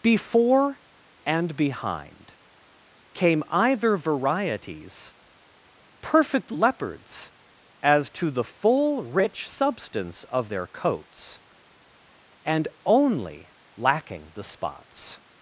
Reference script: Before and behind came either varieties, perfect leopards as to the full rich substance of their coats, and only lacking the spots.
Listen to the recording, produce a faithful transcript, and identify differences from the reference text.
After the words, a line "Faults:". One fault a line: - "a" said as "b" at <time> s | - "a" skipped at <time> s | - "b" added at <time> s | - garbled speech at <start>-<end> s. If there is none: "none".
Before and behind came either varieties, perfect leopards as to the full rich substance of their coats, and only lacking the spots.
Faults:
none